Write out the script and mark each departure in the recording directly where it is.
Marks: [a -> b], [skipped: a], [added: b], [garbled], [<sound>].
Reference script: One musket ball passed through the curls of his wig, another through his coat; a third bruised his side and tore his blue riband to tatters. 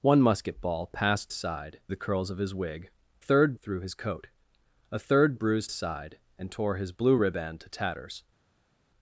One musket ball passed [through -> side] the curls of his wig, [another -> third] through his coat; a third bruised [skipped: his] side and tore his blue riband to tatters.